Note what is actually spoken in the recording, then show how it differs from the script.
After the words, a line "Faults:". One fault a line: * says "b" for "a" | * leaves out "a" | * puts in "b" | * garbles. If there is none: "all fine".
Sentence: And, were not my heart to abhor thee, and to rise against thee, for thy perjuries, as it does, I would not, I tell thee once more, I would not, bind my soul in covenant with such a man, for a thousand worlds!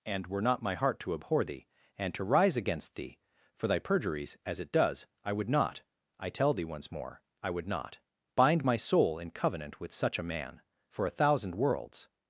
And, were not my heart to abhor thee, and to rise against thee, for thy perjuries, as it does, I would not, I tell thee once more, I would not, bind my soul in covenant with such a man, for a thousand worlds!
Faults:
all fine